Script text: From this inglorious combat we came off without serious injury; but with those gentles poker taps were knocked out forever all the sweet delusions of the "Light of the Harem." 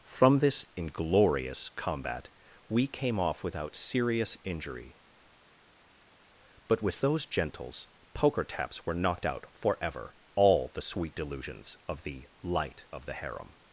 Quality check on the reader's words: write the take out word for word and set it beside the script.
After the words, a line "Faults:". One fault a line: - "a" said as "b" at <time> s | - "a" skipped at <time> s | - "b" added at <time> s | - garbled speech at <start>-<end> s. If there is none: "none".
From this inglorious combat we came off without serious injury; but with those gentles poker taps were knocked out forever all the sweet delusions of the "Light of the Harem."
Faults:
none